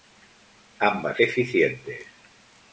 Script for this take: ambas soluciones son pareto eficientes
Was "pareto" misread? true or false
true